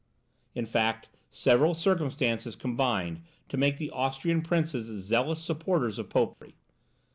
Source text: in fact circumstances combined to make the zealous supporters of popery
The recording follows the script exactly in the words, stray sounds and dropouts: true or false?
false